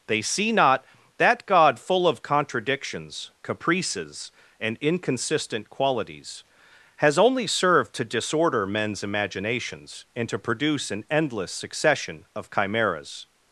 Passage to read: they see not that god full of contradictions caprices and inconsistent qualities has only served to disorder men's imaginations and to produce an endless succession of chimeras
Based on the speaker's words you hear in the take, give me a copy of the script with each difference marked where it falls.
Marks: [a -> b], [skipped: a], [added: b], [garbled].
they see not that god full of contradictions caprices and inconsistent qualities has only served to disorder men's imaginations and to produce an endless succession of chimeras